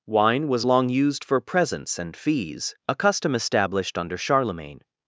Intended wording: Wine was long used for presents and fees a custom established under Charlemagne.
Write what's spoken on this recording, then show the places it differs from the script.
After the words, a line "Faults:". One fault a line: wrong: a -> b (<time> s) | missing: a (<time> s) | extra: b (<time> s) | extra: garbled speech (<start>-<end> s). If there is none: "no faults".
Wine was long used for presents and fees a custom established under Charlemagne.
Faults:
no faults